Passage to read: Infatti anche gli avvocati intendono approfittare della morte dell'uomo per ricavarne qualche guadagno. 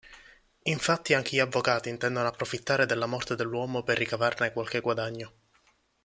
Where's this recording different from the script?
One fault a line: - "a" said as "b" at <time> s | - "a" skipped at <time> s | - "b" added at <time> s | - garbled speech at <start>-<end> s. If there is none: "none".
none